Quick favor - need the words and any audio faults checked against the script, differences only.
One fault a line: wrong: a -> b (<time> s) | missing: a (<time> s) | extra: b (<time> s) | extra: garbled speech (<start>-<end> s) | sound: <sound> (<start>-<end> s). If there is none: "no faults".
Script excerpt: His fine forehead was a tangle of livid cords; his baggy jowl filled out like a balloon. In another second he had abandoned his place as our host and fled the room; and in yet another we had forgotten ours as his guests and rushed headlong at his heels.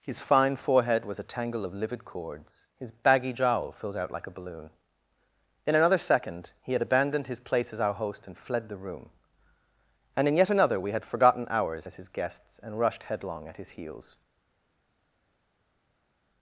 no faults